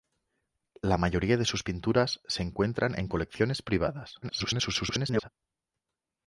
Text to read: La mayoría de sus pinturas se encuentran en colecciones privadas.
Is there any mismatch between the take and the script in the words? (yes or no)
yes